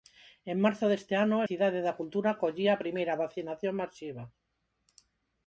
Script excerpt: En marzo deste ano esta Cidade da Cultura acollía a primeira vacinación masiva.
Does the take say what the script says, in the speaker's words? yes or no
no